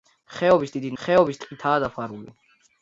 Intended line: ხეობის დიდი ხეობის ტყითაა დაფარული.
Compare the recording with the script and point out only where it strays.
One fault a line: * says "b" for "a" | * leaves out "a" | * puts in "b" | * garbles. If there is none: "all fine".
all fine